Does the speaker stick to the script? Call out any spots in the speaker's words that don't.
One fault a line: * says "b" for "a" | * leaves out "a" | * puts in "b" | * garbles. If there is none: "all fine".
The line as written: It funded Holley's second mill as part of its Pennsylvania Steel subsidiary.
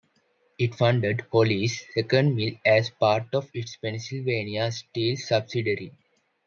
all fine